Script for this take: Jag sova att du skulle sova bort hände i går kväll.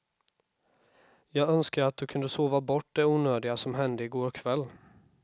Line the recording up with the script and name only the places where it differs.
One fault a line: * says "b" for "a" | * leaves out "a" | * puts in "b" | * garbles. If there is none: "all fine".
* says "önskar" for "sova"
* says "kunde" for "skulle"
* puts in "det onödiga som"